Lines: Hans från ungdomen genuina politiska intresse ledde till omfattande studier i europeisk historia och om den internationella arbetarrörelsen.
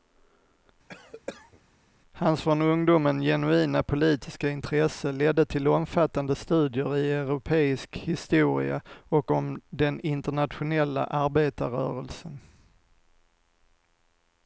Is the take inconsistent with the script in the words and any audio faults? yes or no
yes